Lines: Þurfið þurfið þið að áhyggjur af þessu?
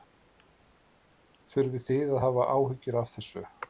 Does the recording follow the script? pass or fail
fail